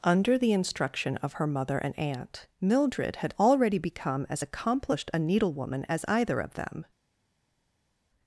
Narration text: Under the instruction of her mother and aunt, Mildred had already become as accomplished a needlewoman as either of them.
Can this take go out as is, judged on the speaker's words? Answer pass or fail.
pass